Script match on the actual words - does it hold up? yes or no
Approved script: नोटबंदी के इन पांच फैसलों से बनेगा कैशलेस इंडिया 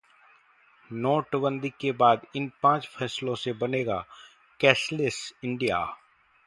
no